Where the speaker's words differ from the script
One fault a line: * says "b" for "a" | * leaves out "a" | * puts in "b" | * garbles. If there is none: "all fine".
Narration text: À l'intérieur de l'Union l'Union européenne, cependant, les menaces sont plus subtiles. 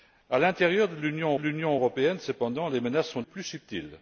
all fine